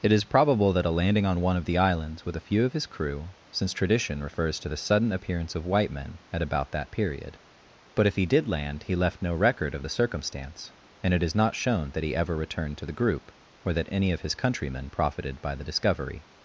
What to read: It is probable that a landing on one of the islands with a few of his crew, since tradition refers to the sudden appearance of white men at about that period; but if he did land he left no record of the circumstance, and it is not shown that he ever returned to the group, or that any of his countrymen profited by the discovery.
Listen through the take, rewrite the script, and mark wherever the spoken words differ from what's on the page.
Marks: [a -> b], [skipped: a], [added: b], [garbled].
It is probable that a landing on one of the islands with a few of his crew, since tradition refers to the sudden appearance of white men at about that period; but if he did land he left no record of the circumstance, and it is not shown that he ever returned to the group, or that any of his countrymen profited by the discovery.